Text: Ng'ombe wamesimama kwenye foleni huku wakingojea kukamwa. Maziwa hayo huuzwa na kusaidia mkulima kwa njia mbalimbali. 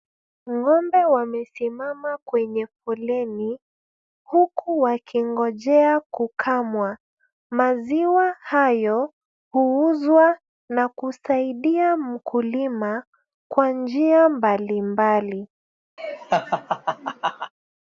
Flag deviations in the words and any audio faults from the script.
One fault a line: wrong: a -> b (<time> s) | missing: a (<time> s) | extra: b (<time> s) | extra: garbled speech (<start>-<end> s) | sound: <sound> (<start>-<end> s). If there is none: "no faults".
sound: laugh (16.0-17.5 s)